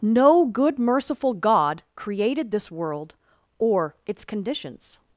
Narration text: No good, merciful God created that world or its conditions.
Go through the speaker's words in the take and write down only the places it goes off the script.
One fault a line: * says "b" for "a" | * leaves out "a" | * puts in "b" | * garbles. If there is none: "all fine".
* says "this" for "that"